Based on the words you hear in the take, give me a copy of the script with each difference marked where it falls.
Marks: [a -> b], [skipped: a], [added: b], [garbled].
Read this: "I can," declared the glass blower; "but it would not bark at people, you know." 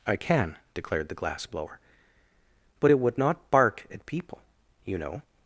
"I can," declared the glass blower; "but it would not bark at people, you know."